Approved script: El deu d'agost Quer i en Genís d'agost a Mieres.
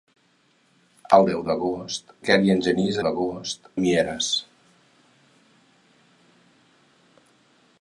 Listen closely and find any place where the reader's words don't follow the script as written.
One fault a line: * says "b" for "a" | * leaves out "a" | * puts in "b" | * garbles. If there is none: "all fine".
all fine